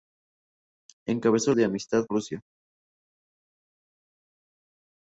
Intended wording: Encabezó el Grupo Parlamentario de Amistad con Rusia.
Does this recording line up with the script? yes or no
no